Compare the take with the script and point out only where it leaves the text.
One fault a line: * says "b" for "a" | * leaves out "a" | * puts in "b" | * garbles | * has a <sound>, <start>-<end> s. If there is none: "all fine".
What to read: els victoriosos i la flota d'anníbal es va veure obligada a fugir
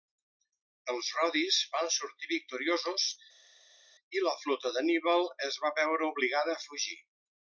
* puts in "rodis van sortir"